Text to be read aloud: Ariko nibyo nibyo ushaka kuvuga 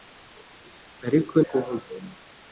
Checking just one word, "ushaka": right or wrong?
wrong